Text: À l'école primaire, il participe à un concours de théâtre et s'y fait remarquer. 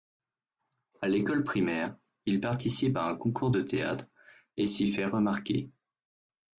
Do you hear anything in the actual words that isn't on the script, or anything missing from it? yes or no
no